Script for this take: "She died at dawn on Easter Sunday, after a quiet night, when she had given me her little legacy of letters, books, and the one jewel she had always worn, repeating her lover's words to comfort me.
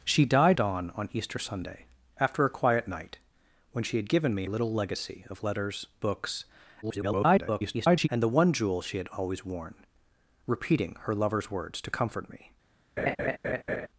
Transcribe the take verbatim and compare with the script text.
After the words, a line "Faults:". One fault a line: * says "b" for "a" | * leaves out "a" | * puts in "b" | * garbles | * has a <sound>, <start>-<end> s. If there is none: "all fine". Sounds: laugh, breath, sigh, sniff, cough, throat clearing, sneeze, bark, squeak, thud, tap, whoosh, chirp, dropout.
"She died dawn on Easter Sunday, after a quiet night, when she had given me little legacy of letters, books, [garbled] and the one jewel she had always worn, repeating her lover's words to comfort me.
Faults:
* leaves out "at"
* leaves out "her"
* garbles
* has a laugh, 13.0-13.9 s